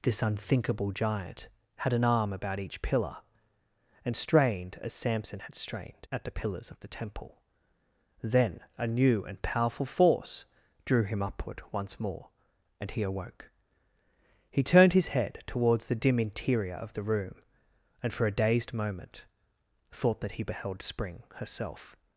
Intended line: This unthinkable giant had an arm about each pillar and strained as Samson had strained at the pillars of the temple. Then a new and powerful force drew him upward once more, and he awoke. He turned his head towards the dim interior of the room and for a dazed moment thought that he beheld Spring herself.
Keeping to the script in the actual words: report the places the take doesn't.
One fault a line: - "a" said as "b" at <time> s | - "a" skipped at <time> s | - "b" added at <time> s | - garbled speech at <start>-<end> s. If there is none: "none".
none